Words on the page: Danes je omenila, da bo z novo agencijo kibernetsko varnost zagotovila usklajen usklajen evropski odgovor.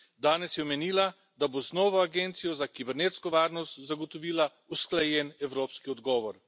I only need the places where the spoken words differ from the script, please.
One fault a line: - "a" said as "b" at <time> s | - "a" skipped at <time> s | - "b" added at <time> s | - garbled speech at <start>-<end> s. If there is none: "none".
- "za" added at 2.5 s
- "usklajen" skipped at 5.3 s